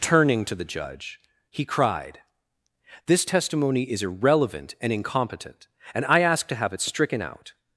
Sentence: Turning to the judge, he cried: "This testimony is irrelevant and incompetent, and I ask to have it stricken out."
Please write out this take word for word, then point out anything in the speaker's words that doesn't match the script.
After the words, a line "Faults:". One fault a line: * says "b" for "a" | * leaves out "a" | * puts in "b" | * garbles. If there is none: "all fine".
Turning to the judge, he cried: "This testimony is irrelevant and incompetent, and I ask to have it stricken out."
Faults:
all fine